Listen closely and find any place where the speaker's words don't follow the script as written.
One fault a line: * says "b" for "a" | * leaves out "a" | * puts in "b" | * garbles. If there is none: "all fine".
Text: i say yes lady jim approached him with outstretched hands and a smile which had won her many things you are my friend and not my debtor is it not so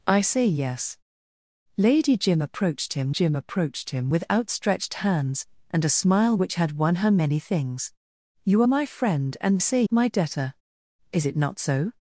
* puts in "jim approached him"
* says "say" for "not"